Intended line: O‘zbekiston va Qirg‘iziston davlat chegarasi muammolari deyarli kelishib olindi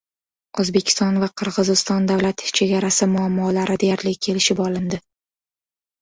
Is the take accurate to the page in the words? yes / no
yes